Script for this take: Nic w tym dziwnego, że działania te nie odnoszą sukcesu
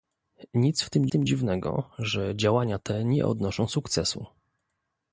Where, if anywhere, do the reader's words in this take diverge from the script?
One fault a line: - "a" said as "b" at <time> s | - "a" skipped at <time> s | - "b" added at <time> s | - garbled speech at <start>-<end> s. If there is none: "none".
- "tym" added at 1.1 s